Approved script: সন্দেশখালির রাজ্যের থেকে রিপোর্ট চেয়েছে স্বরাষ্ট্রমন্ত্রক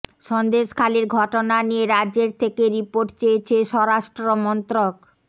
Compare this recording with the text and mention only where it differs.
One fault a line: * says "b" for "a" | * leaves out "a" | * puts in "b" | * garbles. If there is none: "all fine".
* puts in "ঘটনা নিয়ে"